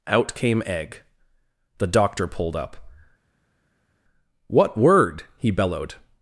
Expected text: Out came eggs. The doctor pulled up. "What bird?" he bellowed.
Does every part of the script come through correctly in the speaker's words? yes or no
no